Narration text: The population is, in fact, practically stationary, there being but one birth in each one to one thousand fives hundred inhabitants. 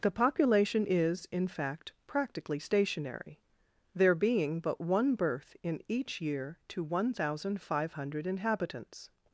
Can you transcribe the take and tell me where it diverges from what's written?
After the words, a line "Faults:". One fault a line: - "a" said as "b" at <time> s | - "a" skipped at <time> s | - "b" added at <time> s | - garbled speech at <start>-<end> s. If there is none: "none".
The population is, in fact, practically stationary, there being but one birth in each year to one thousand five hundred inhabitants.
Faults:
- "one" said as "year" at 6.2 s
- "fives" said as "five" at 7.6 s